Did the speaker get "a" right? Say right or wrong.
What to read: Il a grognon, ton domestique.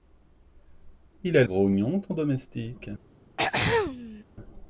right